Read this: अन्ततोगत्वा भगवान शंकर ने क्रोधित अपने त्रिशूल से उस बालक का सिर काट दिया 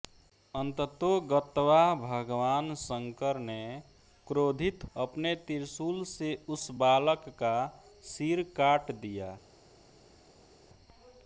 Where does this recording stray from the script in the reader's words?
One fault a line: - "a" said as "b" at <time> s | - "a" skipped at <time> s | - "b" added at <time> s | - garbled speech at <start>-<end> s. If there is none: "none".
none